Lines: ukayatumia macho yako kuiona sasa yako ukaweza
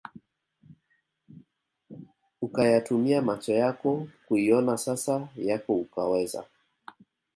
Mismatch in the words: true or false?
false